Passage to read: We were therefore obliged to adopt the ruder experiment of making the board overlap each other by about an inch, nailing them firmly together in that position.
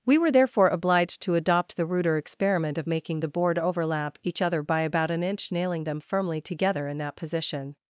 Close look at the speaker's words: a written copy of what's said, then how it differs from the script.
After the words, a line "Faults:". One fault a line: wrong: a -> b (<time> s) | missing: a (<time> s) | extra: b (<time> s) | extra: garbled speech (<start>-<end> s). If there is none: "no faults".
We were therefore obliged to adopt the ruder experiment of making the board overlap each other by about an inch, nailing them firmly together in that position.
Faults:
no faults